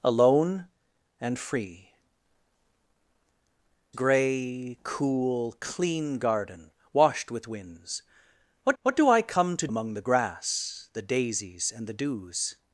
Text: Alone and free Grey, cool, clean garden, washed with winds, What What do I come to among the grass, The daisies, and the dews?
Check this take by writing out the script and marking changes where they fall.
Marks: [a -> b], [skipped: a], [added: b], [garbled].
Alone and free Grey, cool, clean garden, washed with winds, What What do I come to among the grass, The daisies, and the dews?